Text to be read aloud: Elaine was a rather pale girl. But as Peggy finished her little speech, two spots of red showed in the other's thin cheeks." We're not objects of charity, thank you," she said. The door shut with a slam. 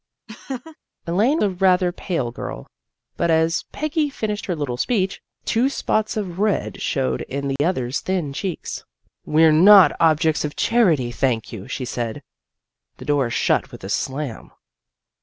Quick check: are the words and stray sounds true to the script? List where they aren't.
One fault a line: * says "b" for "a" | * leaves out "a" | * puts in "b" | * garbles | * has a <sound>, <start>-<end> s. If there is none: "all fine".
* has a laugh, 0.3-0.8 s
* leaves out "was"
* has a dropout, 7.6-7.6 s